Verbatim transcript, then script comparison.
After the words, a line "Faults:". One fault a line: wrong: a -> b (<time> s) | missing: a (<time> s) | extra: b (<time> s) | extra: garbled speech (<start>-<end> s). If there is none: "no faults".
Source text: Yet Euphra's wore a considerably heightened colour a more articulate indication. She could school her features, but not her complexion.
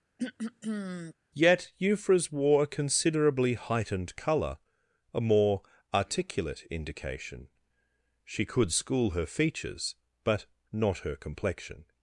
Yet Euphra's wore a considerably heightened colour a more articulate indication. She could school her features, but not her complexion.
Faults:
no faults